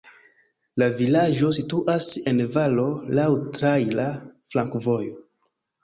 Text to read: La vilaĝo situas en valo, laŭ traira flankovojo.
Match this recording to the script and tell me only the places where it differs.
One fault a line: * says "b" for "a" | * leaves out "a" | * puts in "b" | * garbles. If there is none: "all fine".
all fine